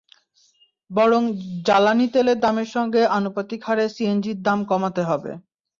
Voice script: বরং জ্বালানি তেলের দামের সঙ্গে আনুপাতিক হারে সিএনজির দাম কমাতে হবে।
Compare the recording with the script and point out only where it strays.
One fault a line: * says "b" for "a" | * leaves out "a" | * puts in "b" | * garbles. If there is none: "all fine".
all fine